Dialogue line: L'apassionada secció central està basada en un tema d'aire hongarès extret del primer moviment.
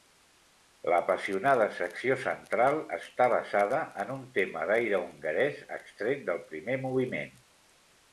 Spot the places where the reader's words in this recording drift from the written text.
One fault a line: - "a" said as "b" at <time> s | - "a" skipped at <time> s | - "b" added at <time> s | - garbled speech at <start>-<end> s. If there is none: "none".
none